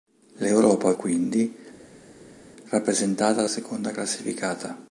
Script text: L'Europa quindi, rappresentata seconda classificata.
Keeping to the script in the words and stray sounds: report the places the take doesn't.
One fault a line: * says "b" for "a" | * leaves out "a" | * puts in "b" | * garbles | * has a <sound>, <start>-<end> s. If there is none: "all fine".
all fine